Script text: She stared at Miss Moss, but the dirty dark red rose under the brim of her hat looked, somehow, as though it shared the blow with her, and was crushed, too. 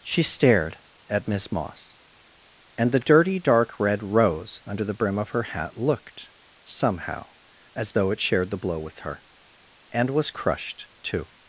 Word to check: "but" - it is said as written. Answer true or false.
false